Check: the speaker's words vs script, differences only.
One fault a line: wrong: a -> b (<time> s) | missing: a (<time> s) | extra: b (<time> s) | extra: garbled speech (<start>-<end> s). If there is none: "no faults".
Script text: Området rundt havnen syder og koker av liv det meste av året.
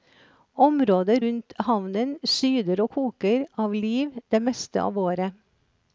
no faults